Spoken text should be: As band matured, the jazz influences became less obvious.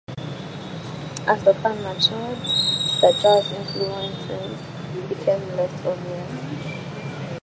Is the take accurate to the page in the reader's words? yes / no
no